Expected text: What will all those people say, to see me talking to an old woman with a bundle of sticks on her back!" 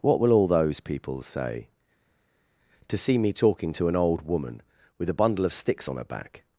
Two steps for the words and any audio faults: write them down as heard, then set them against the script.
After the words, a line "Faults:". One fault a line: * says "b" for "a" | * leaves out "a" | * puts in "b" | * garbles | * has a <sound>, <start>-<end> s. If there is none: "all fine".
What will all those people say, to see me talking to an old woman with a bundle of sticks on her back!"
Faults:
all fine